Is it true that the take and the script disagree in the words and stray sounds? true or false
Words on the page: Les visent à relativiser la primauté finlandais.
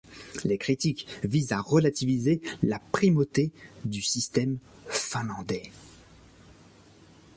true